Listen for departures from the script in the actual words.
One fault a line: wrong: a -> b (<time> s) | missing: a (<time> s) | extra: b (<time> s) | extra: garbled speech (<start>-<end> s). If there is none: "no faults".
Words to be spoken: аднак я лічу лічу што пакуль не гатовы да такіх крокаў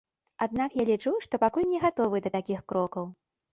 missing: лічу (1.1 s)